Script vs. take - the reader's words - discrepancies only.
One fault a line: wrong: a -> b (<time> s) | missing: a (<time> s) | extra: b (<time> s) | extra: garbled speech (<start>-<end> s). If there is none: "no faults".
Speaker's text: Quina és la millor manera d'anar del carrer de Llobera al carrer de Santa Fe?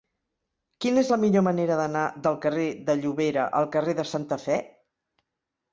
no faults